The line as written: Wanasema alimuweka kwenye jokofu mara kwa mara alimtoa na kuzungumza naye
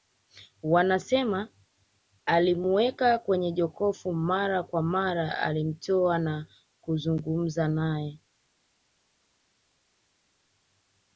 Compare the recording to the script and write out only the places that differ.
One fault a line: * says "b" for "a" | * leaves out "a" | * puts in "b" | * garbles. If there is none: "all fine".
all fine